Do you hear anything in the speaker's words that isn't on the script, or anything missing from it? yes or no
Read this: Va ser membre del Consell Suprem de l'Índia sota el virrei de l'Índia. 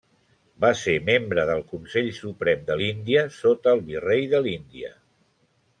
no